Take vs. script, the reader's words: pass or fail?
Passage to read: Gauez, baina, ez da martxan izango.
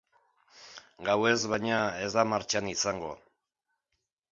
pass